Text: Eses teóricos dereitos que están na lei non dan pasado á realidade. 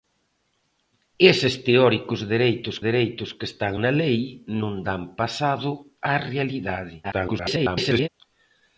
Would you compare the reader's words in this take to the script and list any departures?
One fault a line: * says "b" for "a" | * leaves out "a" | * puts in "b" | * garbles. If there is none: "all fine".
* puts in "dereitos"
* garbles